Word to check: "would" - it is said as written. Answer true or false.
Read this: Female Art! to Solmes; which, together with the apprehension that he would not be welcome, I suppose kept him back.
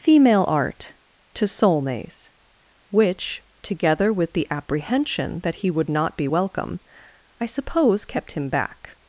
true